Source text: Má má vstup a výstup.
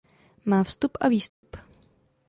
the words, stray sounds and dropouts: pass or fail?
fail